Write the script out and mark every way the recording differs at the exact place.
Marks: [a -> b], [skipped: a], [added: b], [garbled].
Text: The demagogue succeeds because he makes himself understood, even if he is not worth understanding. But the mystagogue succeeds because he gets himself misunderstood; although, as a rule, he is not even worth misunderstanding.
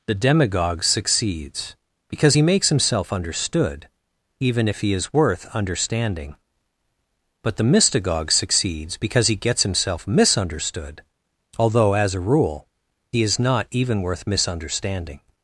The demagogue succeeds because he makes himself understood, even if he is [skipped: not] worth understanding. But the mystagogue succeeds because he gets himself misunderstood; although, as a rule, he is not even worth misunderstanding.